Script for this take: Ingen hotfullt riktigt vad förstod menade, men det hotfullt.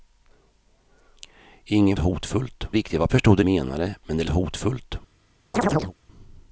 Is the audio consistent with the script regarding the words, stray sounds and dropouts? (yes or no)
no